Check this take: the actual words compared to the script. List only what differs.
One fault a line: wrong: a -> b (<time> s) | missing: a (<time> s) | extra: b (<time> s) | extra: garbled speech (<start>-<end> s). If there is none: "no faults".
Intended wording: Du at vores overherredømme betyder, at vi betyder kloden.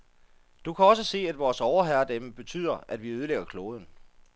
extra: kan også se (0.7 s)
wrong: betyder -> ødelægger (3.1 s)